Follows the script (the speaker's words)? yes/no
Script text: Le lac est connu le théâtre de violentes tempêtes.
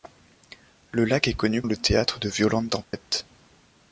yes